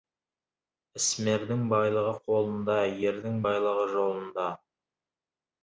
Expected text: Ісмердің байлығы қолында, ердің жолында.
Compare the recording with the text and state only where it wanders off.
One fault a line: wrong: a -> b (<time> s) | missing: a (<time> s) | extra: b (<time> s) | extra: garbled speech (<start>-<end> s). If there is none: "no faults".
extra: байлығы (3.5 s)